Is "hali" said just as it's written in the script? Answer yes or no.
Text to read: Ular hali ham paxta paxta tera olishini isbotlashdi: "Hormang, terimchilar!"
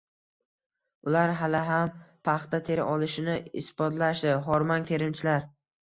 yes